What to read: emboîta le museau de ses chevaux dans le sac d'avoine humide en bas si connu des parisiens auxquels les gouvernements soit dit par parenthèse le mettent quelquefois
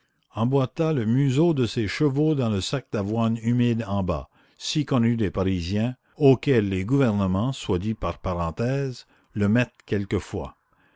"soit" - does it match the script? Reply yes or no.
yes